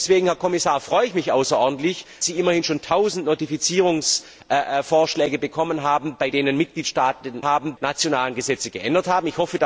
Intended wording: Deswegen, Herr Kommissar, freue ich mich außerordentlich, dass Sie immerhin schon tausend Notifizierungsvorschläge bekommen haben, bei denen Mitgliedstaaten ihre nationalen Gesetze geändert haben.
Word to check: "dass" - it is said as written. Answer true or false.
false